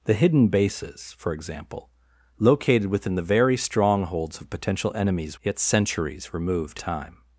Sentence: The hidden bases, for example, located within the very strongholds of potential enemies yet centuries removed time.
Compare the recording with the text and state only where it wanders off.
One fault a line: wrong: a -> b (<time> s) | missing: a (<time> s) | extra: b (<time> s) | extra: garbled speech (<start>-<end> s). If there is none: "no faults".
no faults